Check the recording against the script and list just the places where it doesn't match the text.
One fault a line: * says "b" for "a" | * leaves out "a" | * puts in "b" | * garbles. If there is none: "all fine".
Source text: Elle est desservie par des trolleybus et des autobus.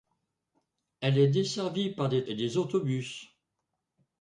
* leaves out "trolleybus"